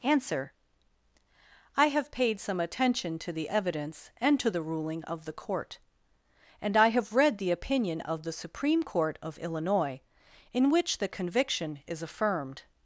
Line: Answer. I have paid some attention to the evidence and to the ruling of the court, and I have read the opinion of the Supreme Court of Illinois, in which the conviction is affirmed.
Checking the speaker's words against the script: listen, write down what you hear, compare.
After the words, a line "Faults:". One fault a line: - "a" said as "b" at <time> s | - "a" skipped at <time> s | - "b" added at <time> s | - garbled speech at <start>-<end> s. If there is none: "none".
Answer. I have paid some attention to the evidence and to the ruling of the court, and I have read the opinion of the Supreme Court of Illinois, in which the conviction is affirmed.
Faults:
none